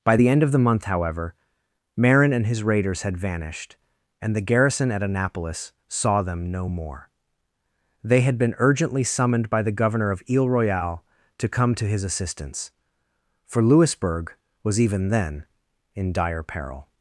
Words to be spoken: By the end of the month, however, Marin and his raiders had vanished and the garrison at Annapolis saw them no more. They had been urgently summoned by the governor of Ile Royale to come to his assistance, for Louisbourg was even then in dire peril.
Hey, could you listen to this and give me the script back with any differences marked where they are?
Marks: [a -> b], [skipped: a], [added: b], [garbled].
By the end of the month, however, Marin and his raiders had vanished and the garrison at Annapolis saw them no more. They had been urgently summoned by the governor of Ile Royale to come to his assistance, for Louisbourg was even then in dire peril.